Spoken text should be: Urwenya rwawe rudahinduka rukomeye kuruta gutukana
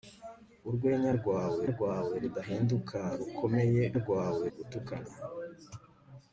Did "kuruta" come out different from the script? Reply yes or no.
yes